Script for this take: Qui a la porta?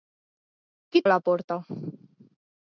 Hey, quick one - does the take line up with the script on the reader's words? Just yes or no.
yes